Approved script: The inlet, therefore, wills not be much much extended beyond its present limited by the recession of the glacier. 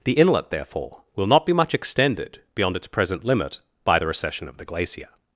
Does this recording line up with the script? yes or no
no